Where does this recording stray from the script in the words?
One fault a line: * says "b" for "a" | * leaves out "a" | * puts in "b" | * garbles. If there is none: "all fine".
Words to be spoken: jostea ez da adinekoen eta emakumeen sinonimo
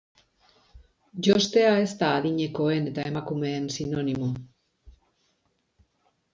all fine